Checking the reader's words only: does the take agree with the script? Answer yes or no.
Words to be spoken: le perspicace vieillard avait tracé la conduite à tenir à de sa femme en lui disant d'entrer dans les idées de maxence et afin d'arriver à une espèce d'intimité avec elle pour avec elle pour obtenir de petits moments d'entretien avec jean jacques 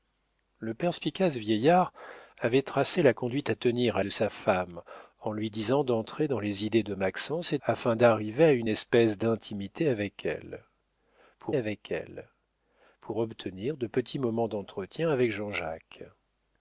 yes